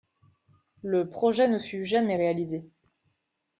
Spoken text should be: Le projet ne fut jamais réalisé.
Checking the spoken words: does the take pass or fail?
pass